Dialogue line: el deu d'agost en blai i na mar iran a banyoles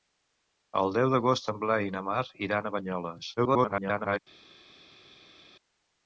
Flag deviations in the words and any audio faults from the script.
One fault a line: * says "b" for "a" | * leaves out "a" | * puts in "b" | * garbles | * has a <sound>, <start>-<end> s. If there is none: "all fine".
* garbles